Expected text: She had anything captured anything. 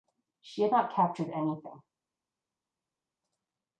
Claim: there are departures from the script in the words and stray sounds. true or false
true